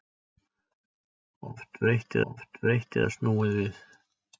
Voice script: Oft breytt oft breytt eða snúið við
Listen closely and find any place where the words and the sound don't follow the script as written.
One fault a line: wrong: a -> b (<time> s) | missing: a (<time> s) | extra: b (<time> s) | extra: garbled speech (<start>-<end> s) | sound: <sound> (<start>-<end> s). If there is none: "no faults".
no faults